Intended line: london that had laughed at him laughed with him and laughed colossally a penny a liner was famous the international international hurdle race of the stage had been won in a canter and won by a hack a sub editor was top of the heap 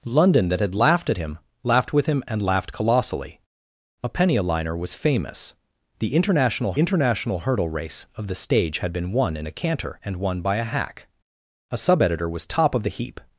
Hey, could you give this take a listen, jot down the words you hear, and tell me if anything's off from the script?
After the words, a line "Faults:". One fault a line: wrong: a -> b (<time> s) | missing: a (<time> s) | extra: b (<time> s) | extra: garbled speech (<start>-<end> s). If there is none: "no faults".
london that had laughed at him laughed with him and laughed colossally a penny a liner was famous the international international hurdle race of the stage had been won in a canter and won by a hack a sub editor was top of the heap
Faults:
no faults